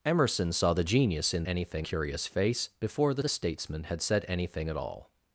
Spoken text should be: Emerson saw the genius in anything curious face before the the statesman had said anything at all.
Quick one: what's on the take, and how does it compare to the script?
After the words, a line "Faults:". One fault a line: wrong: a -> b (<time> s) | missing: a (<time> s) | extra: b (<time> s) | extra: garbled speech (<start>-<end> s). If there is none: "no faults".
Emerson saw the genius in anything curious face before the the statesman had said anything at all.
Faults:
no faults